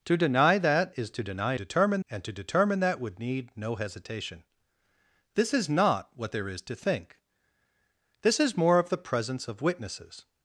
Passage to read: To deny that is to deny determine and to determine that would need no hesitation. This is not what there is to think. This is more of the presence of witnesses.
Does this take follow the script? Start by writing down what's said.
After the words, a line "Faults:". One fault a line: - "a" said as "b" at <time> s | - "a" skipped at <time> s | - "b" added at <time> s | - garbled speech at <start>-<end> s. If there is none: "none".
To deny that is to deny determine and to determine that would need no hesitation. This is not what there is to think. This is more of the presence of witnesses.
Faults:
none